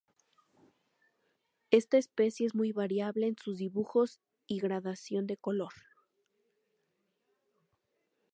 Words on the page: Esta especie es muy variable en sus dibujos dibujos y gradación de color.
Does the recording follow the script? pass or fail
fail